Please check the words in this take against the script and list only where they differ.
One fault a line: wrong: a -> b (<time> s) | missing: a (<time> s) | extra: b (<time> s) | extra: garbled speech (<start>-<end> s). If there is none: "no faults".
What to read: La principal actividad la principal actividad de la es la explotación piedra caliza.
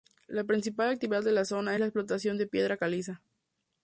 missing: la principal actividad (1.2 s)
extra: zona (1.4 s)
extra: de (2.4 s)